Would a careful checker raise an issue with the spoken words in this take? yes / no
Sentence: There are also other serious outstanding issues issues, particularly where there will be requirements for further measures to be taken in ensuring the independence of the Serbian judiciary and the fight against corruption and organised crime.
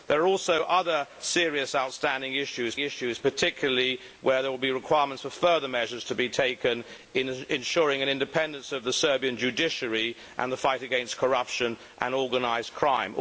no